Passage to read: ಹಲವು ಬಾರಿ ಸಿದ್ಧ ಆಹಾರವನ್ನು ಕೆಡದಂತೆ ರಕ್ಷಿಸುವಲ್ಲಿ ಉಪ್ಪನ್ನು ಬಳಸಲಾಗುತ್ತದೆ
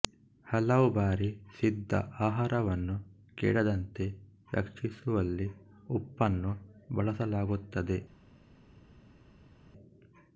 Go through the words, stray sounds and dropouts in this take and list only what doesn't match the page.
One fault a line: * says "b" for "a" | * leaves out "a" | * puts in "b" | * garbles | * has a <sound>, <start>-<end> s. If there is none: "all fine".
all fine